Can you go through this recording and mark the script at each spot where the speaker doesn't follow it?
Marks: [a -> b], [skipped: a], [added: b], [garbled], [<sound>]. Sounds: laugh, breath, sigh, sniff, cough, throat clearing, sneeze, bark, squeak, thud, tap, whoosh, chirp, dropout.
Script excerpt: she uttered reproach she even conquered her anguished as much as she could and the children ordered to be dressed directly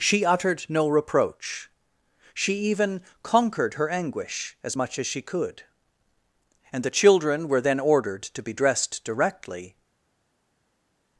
she uttered [added: no] reproach she even conquered her [anguished -> anguish] as much as she could and the children [added: were then] ordered to be dressed directly